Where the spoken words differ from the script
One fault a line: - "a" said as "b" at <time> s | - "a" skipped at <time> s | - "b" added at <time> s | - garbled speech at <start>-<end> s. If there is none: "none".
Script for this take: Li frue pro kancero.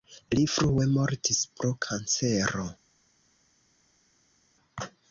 - "mortis" added at 0.9 s